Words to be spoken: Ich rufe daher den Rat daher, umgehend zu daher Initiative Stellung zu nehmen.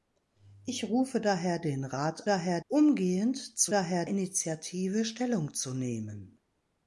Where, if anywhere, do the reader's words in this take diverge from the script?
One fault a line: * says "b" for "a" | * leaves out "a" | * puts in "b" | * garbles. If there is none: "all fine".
all fine